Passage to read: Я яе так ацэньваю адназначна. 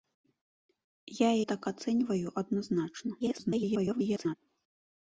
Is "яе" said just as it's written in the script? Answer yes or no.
no